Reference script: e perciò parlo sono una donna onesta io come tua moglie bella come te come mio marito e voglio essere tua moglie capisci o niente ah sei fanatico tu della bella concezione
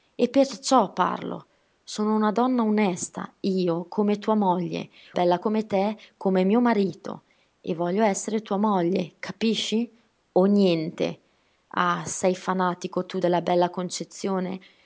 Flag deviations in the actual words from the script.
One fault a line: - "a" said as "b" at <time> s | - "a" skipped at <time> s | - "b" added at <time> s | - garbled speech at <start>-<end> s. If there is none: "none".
none